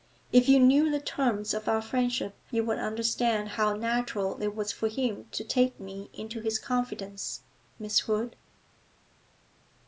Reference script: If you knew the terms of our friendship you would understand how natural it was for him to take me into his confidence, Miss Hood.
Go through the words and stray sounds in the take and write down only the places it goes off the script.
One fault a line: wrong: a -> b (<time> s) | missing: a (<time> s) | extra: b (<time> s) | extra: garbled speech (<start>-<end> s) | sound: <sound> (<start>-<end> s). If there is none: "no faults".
no faults